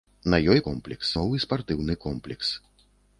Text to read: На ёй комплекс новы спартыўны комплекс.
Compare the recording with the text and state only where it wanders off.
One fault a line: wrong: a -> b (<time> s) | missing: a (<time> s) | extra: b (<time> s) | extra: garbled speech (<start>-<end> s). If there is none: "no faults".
no faults